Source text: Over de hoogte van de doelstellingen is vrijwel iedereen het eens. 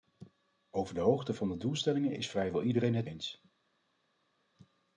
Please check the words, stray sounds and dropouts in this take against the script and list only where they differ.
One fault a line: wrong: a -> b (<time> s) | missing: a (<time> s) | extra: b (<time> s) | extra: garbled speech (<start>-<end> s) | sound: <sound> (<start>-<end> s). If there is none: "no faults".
no faults